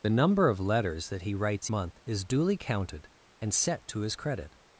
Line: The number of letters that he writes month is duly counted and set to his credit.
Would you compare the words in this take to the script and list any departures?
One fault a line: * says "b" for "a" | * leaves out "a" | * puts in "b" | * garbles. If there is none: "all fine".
all fine